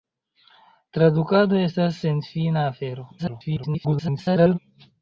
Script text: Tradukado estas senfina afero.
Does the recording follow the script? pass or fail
fail